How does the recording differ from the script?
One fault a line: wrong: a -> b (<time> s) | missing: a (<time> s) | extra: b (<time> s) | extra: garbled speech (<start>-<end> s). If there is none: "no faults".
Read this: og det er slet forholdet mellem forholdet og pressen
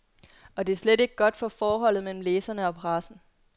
extra: ikke godt for (1.0 s)
wrong: forholdet -> læserne (2.2 s)